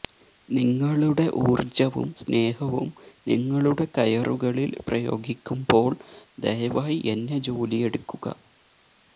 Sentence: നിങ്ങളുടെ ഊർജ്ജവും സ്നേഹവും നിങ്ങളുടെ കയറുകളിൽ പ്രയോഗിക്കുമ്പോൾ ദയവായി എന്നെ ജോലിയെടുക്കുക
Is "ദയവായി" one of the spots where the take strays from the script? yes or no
no